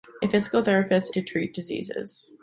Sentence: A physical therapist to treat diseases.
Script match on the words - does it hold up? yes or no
yes